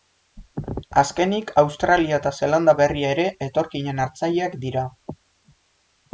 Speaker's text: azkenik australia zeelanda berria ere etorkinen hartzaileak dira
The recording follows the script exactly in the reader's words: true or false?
false